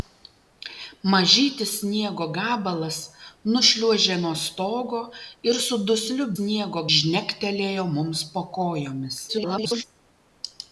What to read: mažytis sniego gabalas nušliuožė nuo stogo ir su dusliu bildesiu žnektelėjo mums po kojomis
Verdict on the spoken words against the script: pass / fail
fail